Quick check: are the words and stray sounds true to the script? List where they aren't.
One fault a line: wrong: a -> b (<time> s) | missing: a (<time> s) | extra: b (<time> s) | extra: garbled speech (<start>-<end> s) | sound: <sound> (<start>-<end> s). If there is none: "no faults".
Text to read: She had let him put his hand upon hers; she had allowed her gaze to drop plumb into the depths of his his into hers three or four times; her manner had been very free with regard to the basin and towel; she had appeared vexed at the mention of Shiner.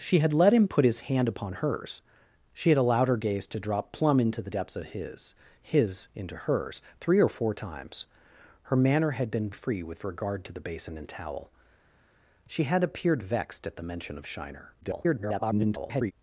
missing: very (9.5 s)
extra: garbled speech (14.8-16.1 s)